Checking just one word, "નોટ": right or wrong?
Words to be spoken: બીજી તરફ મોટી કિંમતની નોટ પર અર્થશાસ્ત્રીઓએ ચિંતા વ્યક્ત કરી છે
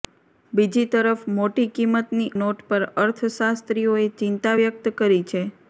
right